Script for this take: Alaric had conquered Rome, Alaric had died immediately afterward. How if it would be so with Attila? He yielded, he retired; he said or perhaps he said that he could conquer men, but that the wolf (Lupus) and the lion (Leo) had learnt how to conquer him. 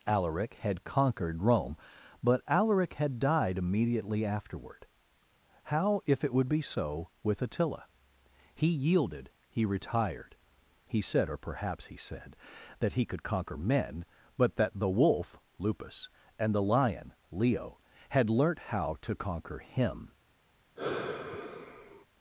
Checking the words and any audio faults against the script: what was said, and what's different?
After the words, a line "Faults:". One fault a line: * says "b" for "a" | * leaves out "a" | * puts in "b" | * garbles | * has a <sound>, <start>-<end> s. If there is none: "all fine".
Alaric had conquered Rome, but Alaric had died immediately afterward. How if it would be so with Attila? He yielded, he retired; he said or perhaps he said that he could conquer men, but that the wolf (Lupus) and the lion (Leo) had learnt how to conquer him.
Faults:
* puts in "but"
* has a sigh, 20.8-22.1 s